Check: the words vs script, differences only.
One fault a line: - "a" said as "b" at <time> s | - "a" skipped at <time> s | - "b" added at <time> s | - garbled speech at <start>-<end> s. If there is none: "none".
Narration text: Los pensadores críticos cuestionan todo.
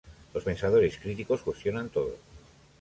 none